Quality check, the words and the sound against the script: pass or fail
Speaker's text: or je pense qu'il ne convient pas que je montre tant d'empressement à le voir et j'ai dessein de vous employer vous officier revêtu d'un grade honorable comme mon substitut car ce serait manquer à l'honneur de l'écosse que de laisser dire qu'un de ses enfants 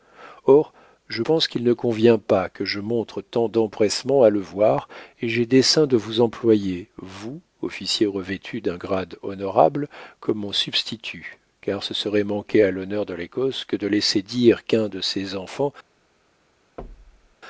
fail